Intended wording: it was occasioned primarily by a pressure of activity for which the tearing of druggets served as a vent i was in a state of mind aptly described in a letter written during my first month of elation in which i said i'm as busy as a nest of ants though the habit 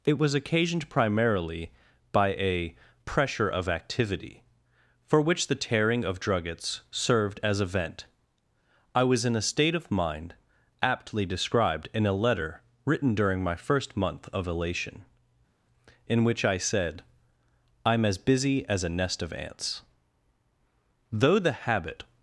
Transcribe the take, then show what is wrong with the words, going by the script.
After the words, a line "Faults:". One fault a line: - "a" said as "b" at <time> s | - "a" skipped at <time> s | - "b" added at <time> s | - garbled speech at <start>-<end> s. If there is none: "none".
it was occasioned primarily by a pressure of activity for which the tearing of druggets served as a vent i was in a state of mind aptly described in a letter written during my first month of elation in which i said i'm as busy as a nest of ants though the habit
Faults:
none